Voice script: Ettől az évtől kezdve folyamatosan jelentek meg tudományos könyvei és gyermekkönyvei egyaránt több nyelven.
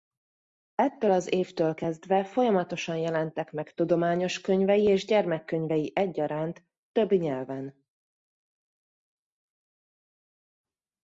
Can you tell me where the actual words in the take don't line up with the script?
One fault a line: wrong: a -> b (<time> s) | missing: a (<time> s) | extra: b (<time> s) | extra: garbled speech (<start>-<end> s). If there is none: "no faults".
no faults